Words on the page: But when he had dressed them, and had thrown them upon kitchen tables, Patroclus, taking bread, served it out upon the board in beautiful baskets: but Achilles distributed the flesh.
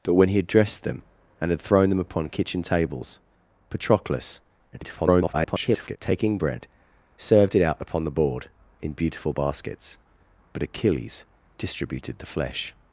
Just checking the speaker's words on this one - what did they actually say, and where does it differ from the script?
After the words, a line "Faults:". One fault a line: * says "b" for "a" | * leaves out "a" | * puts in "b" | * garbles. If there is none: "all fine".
But when he had dressed them, and had thrown them upon kitchen tables, Patroclus, [garbled] taking bread, served it out upon the board in beautiful baskets: but Achilles distributed the flesh.
Faults:
* garbles